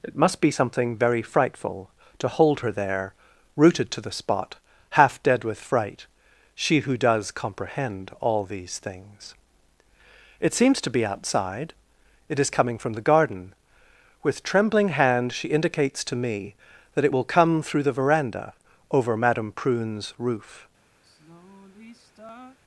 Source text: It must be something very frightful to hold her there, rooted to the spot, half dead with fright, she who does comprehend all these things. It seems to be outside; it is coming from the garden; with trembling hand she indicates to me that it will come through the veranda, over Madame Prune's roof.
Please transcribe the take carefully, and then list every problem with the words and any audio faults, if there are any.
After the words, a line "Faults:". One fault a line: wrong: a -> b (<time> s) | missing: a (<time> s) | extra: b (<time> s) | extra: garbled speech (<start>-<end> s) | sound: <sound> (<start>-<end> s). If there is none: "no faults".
It must be something very frightful to hold her there, rooted to the spot, half dead with fright, she who does comprehend all these things. It seems to be outside; it is coming from the garden; with trembling hand she indicates to me that it will come through the veranda, over Madame Prune's roof.
Faults:
sound: sigh (21.0-22.6 s)